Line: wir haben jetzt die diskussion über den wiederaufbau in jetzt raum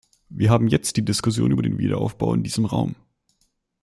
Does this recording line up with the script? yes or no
no